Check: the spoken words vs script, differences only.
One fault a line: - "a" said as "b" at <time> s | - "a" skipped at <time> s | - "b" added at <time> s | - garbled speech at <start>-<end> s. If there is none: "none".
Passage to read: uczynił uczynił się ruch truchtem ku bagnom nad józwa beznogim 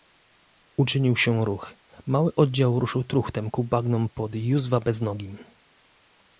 - "uczynił" skipped at 1.1 s
- "mały oddział ruszył" added at 2.0 s
- "nad" said as "pod" at 4.1 s